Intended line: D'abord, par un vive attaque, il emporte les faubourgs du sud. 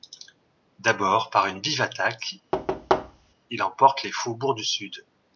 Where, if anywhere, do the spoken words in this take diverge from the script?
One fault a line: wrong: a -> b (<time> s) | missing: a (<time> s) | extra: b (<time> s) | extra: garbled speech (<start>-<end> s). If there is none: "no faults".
wrong: un -> une (1.4 s)